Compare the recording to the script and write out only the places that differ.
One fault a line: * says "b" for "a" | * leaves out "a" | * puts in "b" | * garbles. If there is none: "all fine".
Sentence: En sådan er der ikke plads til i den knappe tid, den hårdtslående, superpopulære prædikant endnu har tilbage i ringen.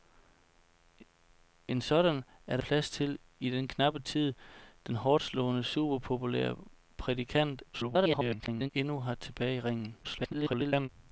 * leaves out "ikke"
* garbles
* garbles